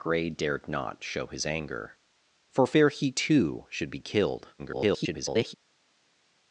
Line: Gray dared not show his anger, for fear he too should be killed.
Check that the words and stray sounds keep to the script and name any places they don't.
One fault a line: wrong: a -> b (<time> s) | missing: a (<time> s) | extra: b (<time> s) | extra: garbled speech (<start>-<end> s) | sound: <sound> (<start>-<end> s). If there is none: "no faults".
extra: garbled speech (4.6-5.5 s)